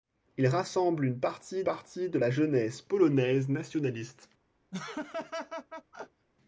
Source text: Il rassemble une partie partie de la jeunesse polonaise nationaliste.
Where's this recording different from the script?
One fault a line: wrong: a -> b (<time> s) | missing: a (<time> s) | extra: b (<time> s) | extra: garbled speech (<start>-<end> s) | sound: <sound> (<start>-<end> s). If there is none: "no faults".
sound: laugh (4.7-6.3 s)